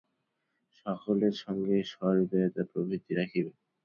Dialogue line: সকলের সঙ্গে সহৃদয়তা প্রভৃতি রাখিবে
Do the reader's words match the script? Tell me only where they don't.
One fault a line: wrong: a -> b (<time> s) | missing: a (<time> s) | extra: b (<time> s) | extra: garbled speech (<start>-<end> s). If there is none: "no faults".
no faults